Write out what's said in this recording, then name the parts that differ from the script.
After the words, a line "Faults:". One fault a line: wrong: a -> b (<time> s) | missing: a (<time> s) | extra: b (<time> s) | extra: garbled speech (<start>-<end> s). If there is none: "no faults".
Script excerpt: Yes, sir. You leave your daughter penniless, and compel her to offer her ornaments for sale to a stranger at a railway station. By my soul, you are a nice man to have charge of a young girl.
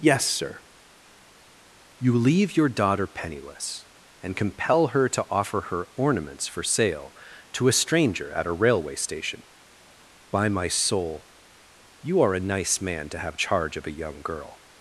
Yes, sir. You leave your daughter penniless, and compel her to offer her ornaments for sale to a stranger at a railway station. By my soul, you are a nice man to have charge of a young girl.
Faults:
no faults